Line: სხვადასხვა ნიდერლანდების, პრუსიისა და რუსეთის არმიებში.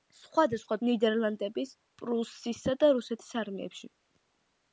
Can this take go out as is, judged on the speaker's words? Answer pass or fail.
pass